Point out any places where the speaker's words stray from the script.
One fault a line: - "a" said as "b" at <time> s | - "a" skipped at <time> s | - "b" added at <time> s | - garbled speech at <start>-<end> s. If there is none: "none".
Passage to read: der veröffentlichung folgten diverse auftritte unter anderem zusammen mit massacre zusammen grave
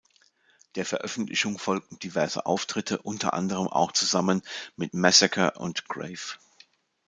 - "auch" added at 3.7 s
- "zusammen" said as "und" at 5.6 s